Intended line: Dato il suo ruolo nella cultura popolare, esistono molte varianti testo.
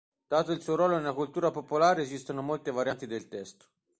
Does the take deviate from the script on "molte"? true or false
false